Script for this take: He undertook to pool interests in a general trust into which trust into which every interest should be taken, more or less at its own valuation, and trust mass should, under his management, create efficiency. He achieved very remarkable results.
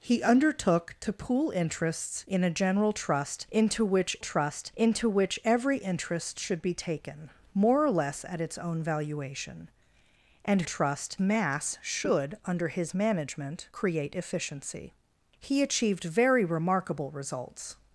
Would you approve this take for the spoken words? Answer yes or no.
yes